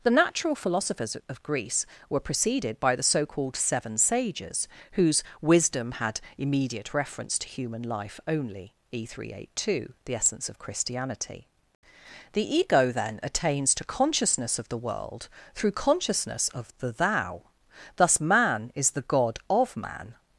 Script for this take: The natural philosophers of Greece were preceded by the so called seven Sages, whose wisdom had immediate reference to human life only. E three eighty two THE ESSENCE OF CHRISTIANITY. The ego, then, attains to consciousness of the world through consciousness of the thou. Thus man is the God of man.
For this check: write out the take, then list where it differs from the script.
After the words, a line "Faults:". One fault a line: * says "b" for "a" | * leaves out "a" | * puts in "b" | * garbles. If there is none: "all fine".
The natural philosophers of Greece were preceded by the so called seven Sages, whose wisdom had immediate reference to human life only. E three eighty two THE ESSENCE OF CHRISTIANITY. The ego, then, attains to consciousness of the world through consciousness of the thou. Thus man is the God of man.
Faults:
all fine